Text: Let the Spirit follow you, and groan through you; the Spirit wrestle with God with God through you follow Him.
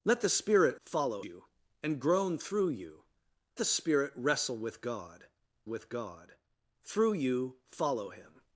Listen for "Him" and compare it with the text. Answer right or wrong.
right